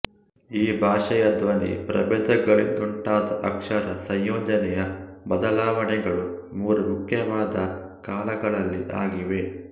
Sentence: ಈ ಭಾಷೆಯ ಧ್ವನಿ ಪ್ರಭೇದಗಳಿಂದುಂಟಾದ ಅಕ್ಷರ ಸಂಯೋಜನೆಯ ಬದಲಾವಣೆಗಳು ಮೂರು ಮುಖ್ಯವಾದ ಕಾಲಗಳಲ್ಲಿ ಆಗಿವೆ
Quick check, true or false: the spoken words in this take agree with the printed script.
true